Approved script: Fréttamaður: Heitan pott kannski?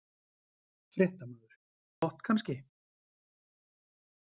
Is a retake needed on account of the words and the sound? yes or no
yes